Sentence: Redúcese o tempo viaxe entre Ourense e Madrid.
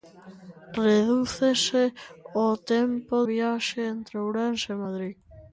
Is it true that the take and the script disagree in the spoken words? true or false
false